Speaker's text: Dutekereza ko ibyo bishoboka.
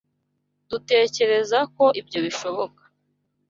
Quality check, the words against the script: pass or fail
pass